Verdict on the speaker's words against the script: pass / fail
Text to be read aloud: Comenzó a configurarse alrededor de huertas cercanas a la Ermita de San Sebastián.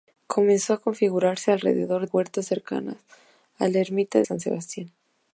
fail